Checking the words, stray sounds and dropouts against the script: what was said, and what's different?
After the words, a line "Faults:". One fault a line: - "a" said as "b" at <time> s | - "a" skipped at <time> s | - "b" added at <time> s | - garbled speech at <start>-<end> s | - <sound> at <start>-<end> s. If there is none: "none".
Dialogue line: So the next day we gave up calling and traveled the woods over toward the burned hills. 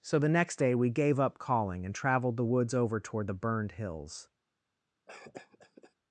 So the next day we gave up calling and traveled the woods over toward the burned hills.
Faults:
- cough at 5.1-5.9 s